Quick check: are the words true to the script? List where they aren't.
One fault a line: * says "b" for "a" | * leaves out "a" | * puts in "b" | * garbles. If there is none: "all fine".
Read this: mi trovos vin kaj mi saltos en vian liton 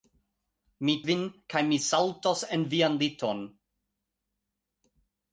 * leaves out "trovos"